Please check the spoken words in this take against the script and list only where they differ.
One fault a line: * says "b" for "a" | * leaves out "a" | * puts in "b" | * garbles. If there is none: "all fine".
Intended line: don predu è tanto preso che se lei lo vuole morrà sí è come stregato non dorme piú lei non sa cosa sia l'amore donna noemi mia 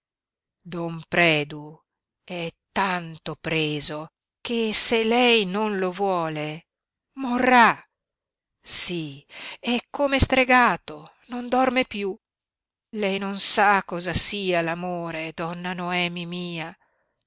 * puts in "non"